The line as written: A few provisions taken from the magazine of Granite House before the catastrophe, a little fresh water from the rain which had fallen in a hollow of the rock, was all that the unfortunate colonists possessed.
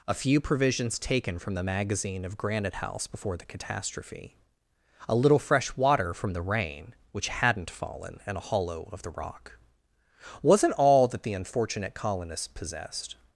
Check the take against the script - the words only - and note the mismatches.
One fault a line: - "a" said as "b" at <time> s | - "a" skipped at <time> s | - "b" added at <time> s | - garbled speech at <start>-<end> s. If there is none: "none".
- "had" said as "hadn't" at 7.3 s
- "was" said as "wasn't" at 10.4 s